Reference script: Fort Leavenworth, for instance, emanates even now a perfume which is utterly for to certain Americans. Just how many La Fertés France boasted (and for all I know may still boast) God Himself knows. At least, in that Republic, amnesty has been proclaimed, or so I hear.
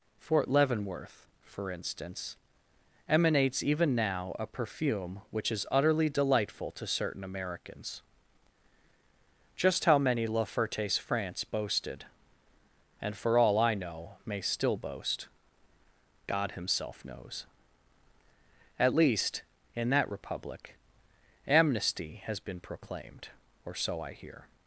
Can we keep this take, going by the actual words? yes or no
no